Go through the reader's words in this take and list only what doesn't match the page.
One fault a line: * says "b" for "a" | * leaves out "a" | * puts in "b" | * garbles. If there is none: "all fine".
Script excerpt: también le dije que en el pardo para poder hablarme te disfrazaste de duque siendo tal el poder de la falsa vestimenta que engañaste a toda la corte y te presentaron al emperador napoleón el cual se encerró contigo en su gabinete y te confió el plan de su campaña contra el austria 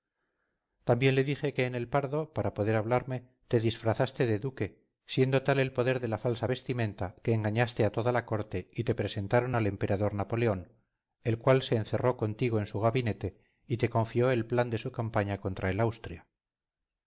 all fine